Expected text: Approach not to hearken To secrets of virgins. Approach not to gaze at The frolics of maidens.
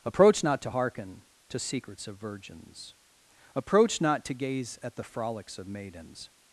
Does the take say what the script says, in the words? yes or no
yes